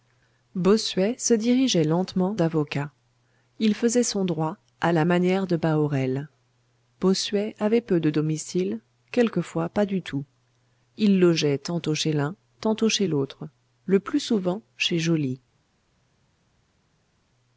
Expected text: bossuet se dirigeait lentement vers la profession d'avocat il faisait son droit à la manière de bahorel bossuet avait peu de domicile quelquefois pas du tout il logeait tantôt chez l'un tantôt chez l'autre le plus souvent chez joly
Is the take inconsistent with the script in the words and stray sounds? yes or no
yes